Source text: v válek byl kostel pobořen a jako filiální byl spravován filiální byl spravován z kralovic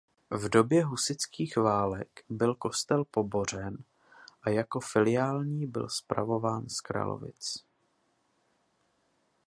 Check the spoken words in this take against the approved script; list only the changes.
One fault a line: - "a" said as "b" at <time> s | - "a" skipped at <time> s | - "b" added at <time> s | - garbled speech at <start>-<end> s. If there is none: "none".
- "době husitských" added at 0.5 s
- "filiální byl spravován" skipped at 6.7 s